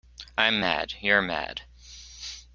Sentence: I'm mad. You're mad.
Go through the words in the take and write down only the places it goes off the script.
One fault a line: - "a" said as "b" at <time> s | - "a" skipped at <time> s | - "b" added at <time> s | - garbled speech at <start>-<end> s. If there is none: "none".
none